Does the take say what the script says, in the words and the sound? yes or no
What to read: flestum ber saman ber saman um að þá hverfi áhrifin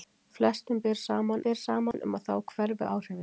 no